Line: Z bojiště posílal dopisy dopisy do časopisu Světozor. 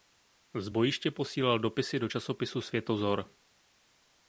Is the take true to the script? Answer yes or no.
no